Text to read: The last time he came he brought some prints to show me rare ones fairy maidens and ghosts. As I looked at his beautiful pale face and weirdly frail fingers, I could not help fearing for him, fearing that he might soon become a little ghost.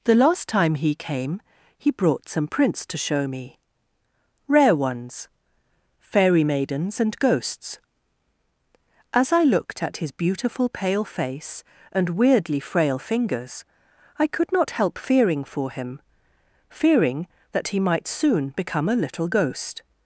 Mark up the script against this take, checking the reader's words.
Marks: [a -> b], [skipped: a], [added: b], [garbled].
The last time he came he brought some prints to show me rare ones fairy maidens and ghosts. As I looked at his beautiful pale face and weirdly frail fingers, I could not help fearing for him, fearing that he might soon become a little ghost.